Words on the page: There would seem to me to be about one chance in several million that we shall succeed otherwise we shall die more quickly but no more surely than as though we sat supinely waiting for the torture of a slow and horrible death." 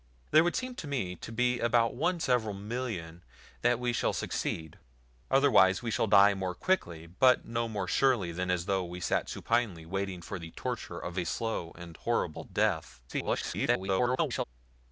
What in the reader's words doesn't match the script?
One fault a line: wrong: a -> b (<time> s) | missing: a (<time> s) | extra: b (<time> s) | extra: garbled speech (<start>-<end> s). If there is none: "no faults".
missing: chance in (2.2 s)
extra: garbled speech (13.1-14.4 s)